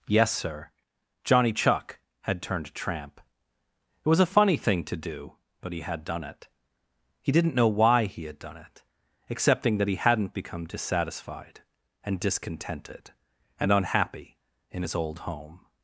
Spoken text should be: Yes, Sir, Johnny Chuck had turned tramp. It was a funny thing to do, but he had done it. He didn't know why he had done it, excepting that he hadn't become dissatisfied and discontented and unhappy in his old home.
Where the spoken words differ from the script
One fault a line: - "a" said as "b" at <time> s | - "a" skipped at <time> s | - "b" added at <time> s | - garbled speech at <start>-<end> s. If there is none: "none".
none